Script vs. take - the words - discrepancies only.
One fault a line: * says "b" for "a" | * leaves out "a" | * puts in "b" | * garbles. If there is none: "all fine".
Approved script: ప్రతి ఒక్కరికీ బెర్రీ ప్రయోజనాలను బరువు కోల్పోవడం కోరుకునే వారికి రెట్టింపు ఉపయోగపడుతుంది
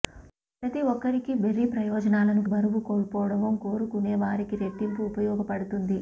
all fine